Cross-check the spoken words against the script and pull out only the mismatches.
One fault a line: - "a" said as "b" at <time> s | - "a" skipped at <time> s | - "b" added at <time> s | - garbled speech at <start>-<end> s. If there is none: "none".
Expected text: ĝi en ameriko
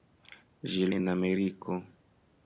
none